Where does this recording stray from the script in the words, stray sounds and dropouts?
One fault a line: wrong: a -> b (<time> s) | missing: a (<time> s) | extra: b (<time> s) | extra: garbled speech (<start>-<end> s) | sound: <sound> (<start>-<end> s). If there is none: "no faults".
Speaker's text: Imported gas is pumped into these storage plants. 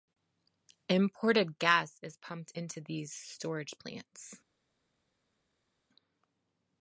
no faults